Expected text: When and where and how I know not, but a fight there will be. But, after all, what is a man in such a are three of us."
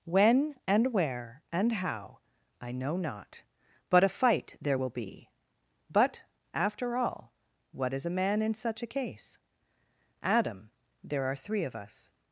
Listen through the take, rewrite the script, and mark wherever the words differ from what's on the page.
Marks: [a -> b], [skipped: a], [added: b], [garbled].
When and where and how I know not, but a fight there will be. But, after all, what is a man in such a [added: case Adam there] are three of us."